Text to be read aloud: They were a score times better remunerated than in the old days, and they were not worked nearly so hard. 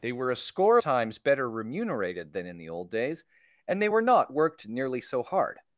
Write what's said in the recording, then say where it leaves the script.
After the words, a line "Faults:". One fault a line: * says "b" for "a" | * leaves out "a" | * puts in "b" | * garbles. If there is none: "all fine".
They were a score times better remunerated than in the old days, and they were not worked nearly so hard.
Faults:
all fine